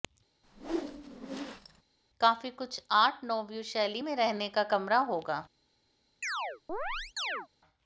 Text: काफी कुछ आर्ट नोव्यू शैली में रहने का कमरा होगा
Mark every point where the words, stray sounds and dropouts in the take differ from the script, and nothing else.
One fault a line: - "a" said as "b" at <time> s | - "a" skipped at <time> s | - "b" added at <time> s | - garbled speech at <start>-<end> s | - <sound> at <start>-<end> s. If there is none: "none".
- whoosh at 0.4-1.8 s
- chirp at 6.2-7.5 s